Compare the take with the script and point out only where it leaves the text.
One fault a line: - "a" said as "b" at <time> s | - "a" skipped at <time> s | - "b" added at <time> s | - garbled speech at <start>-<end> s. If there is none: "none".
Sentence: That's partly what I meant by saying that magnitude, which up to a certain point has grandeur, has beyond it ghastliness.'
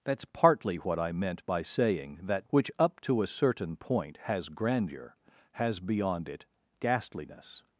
- "magnitude" skipped at 2.5 s